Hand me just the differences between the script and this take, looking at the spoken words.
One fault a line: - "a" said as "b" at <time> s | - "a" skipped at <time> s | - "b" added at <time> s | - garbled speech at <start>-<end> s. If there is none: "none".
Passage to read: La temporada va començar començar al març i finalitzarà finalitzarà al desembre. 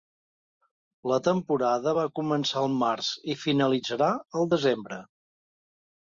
- "començar" skipped at 2.6 s
- "finalitzarà" skipped at 4.1 s